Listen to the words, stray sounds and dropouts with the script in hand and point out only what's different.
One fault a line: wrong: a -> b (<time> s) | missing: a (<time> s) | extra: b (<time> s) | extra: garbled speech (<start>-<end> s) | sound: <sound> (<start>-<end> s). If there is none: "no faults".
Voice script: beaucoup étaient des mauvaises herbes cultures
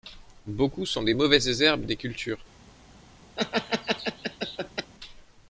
wrong: étaient -> sont (0.9 s)
extra: des (1.8 s)
sound: laugh (3.4-4.9 s)